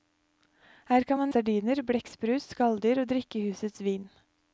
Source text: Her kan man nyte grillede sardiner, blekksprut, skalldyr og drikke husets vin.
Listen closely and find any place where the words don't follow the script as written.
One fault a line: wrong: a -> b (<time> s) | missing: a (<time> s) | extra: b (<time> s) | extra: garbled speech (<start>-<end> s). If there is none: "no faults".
missing: nyte grillede (1.3 s)